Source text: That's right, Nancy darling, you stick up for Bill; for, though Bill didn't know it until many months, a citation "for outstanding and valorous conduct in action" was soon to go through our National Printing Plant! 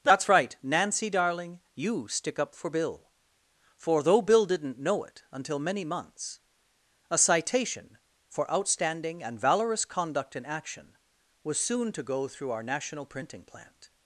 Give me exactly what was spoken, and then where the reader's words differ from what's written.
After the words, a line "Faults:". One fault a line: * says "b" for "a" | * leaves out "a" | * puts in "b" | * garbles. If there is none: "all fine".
That's right, Nancy darling, you stick up for Bill; for, though Bill didn't know it until many months, a citation "for outstanding and valorous conduct in action" was soon to go through our National Printing Plant!
Faults:
all fine